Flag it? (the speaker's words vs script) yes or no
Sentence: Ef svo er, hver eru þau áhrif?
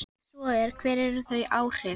no